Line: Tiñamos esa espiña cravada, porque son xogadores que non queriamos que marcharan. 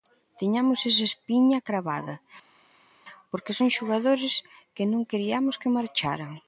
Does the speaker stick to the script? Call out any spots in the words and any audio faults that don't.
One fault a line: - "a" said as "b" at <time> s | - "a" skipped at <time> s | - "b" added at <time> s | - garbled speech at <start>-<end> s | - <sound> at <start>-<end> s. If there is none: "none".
none